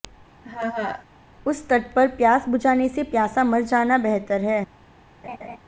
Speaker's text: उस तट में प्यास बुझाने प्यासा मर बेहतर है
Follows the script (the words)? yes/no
no